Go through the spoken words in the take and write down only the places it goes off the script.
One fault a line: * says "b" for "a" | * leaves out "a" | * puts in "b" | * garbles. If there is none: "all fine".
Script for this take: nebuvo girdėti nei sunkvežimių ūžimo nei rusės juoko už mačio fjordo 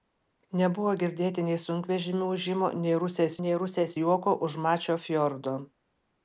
* puts in "nei rusės"